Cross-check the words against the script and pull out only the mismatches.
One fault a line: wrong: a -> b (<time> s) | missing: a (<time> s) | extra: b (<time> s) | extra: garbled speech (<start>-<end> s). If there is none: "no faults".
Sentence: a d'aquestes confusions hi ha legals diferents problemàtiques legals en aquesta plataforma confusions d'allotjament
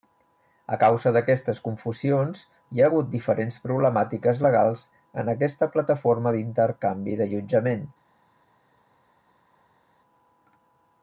extra: causa (0.8 s)
wrong: legals -> hagut (2.9 s)
wrong: confusions -> d'intercanvi (6.4 s)